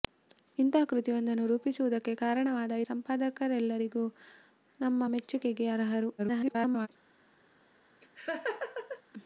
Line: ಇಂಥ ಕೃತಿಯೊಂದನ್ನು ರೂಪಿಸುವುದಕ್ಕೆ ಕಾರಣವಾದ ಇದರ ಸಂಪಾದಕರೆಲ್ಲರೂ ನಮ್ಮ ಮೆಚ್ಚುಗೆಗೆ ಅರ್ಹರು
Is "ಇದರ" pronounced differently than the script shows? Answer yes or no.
yes